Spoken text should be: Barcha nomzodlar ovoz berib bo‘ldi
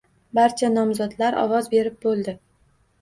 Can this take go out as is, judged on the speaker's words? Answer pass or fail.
pass